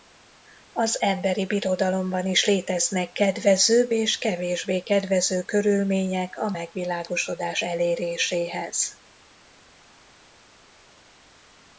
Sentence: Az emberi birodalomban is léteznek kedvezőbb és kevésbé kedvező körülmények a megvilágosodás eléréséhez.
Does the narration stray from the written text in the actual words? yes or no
no